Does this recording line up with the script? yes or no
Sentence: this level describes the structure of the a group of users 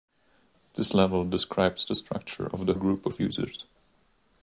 yes